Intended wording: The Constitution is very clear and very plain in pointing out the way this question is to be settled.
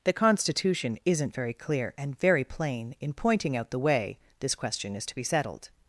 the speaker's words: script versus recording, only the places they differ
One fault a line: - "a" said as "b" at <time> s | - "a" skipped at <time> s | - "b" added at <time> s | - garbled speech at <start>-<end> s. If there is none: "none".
- "is" said as "isn't" at 1.1 s